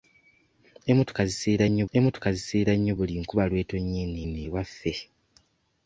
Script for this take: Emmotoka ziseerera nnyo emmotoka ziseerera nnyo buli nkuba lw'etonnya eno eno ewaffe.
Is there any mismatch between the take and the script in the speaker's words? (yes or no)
no